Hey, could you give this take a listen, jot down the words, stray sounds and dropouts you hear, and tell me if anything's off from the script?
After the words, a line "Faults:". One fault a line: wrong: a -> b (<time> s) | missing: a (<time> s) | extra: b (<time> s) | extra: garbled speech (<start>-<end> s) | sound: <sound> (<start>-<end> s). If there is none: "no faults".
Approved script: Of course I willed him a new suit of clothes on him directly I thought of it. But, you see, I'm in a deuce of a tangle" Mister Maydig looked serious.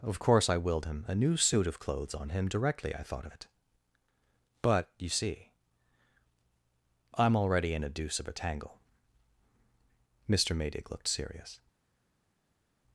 Of course I willed him a new suit of clothes on him directly I thought of it. But, you see, I'm already in a deuce of a tangle" Mister Maydig looked serious.
Faults:
extra: already (7.4 s)